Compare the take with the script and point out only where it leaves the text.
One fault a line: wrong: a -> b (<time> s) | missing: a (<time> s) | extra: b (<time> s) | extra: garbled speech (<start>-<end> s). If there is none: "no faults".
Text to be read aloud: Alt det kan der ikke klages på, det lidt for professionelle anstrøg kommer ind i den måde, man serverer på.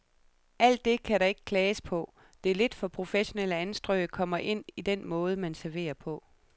no faults